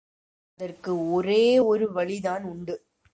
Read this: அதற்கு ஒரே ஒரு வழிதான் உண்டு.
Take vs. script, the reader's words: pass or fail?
pass